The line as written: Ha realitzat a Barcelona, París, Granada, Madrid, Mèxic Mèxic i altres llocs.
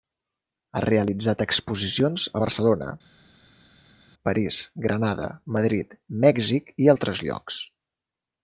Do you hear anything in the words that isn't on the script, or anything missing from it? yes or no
yes